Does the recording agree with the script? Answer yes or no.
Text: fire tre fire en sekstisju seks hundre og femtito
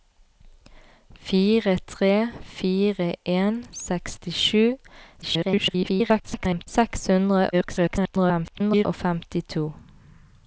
no